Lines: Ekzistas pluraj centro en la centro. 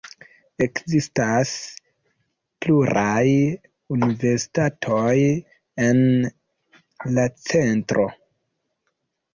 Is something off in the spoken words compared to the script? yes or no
yes